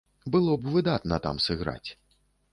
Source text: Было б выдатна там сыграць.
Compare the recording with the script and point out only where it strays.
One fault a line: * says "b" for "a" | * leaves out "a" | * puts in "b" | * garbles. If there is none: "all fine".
all fine